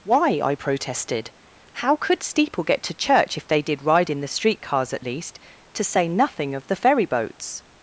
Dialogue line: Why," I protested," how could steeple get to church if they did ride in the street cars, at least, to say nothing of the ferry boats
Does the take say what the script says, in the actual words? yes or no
yes